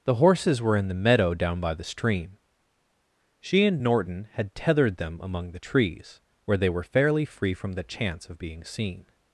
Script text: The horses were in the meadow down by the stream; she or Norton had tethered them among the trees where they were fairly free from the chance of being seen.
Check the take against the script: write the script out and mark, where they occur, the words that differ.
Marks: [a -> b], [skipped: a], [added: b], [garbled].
The horses were in the meadow down by the stream; she [or -> and] Norton had tethered them among the trees where they were fairly free from the chance of being seen.